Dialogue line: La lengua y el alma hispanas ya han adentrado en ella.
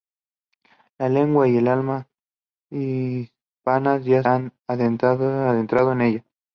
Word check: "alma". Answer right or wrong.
right